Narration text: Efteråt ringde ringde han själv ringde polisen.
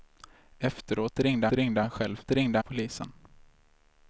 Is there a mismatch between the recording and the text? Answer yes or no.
no